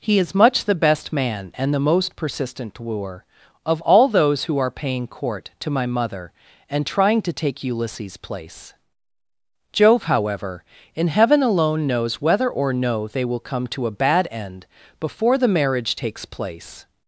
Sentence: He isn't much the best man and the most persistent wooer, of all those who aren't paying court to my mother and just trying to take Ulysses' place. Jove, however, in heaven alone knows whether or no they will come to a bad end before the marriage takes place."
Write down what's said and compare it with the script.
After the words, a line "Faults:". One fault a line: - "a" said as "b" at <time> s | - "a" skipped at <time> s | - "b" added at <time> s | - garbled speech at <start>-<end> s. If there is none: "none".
He is much the best man and the most persistent wooer, of all those who are paying court to my mother and trying to take Ulysses' place. Jove, however, in heaven alone knows whether or no they will come to a bad end before the marriage takes place."
Faults:
- "isn't" said as "is" at 0.2 s
- "aren't" said as "are" at 4.6 s
- "just" skipped at 6.9 s